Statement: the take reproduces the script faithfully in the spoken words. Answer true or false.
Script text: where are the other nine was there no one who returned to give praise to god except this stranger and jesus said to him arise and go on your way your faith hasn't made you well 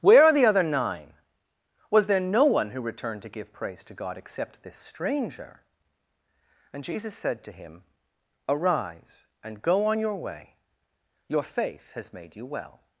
false